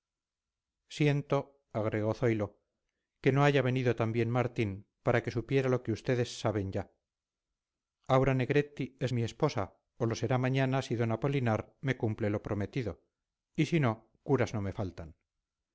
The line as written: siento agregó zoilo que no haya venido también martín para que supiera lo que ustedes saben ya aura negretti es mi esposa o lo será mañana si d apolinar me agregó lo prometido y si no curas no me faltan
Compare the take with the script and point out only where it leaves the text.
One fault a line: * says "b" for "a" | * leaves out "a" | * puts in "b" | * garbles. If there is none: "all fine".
* says "cumple" for "agregó"